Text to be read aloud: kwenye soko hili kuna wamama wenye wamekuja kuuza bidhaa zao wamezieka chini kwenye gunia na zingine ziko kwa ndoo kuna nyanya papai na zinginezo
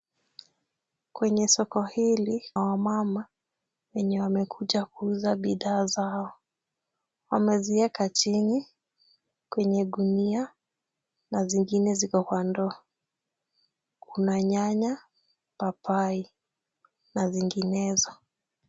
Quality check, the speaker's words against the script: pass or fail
fail